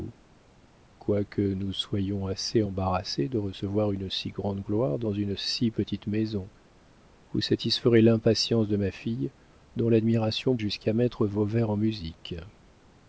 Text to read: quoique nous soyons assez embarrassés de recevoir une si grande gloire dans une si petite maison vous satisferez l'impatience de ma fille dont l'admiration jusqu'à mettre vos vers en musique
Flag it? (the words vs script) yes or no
no